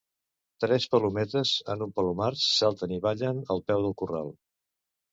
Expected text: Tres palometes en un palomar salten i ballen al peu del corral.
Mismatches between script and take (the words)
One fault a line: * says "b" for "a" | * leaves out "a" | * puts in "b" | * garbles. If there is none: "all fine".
all fine